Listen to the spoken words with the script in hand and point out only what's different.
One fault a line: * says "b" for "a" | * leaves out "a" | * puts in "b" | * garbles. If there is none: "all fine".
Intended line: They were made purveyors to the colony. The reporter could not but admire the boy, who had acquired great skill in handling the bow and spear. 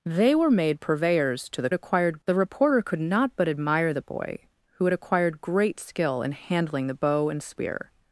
* says "acquired" for "colony"